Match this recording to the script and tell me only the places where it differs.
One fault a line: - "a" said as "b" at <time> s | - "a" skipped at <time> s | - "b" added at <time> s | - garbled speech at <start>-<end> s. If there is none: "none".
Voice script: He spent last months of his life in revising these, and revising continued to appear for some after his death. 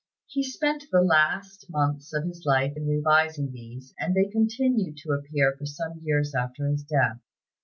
- "the" added at 0.9 s
- "revising" said as "they" at 4.1 s
- "years" added at 6.0 s